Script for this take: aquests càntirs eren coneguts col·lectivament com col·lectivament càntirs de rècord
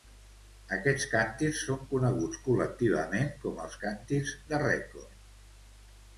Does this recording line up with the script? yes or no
no